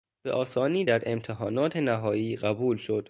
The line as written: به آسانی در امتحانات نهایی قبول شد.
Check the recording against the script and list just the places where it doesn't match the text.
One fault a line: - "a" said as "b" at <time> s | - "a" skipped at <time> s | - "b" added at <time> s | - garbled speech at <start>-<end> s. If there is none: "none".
none